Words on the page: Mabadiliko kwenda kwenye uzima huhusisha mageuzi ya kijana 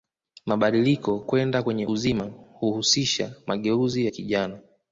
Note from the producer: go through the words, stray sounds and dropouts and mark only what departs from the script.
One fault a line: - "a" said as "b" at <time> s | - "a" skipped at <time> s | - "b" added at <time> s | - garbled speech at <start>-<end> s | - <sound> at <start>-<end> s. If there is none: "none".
none